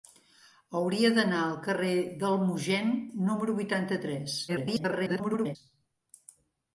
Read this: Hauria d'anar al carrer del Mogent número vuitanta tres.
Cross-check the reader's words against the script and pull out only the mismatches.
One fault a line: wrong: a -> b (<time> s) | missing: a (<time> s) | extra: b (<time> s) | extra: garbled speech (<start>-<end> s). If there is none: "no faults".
extra: garbled speech (4.5-5.6 s)